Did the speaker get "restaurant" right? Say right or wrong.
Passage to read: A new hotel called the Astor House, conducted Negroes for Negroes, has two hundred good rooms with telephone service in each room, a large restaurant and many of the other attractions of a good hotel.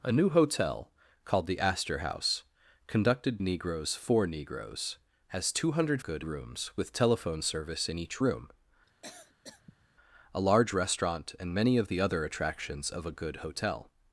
right